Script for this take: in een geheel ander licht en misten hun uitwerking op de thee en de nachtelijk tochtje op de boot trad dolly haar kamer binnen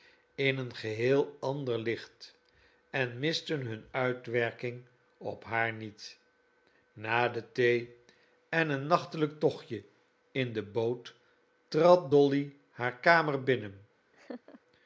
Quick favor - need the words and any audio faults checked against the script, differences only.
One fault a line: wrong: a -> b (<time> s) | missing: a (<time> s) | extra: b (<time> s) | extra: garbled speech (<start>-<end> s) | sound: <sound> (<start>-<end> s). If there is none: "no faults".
extra: haar niet na (5.4 s)
wrong: de -> een (8.7 s)
wrong: op -> in (10.3 s)
sound: laugh (14.1-14.6 s)